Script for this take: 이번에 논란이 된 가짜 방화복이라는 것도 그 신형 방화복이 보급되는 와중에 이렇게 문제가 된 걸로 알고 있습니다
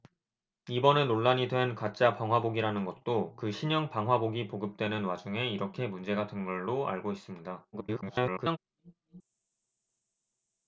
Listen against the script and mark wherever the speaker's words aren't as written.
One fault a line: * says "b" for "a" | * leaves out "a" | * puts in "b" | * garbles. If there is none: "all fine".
* garbles